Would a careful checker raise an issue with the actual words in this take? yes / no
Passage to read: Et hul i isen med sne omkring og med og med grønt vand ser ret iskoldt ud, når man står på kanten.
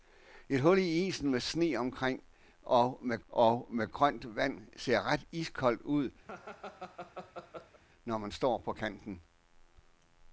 no